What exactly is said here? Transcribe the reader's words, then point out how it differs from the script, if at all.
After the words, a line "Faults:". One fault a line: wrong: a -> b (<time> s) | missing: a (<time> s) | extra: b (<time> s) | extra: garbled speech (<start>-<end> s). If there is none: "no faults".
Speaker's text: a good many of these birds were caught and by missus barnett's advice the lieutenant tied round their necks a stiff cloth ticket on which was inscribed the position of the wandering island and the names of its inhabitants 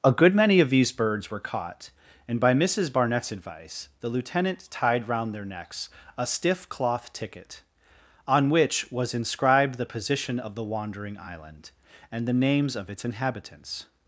a good many of these birds were caught and by missus barnett's advice the lieutenant tied round their necks a stiff cloth ticket on which was inscribed the position of the wandering island and the names of its inhabitants
Faults:
no faults